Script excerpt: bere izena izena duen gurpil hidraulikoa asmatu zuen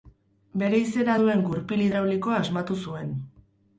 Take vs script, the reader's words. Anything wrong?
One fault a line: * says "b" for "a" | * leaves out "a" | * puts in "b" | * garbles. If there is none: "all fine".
* leaves out "izena"